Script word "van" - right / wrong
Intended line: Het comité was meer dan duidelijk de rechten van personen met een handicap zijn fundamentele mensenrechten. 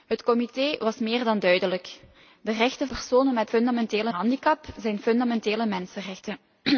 wrong